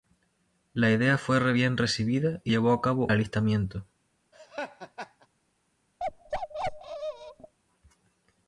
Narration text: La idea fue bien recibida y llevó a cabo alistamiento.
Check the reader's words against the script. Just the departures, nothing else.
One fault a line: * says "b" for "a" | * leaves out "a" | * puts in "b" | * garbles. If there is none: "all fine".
all fine